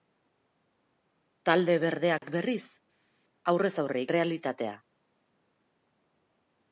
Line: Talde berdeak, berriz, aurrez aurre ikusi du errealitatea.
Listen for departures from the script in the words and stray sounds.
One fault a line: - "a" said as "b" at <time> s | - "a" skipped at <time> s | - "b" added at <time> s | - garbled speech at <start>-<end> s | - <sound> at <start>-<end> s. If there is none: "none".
- "ikusi du" skipped at 4.0 s